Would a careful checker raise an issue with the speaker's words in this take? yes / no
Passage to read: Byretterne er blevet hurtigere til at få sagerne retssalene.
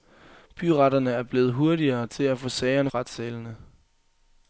no